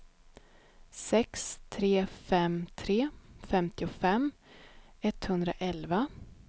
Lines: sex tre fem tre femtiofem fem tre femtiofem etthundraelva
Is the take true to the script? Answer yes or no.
no